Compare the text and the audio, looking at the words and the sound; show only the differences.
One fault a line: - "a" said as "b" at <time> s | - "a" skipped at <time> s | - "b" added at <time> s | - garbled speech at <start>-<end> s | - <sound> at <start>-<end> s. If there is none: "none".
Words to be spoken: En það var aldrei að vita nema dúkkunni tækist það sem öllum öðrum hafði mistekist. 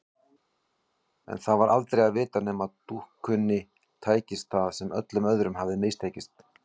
none